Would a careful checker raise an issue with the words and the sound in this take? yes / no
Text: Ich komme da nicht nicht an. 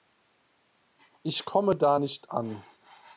yes